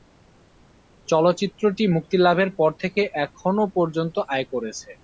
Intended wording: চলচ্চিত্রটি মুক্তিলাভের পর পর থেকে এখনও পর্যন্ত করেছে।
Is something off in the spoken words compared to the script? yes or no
yes